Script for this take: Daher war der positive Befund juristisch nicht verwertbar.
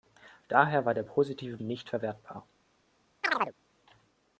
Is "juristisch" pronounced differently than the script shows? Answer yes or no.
yes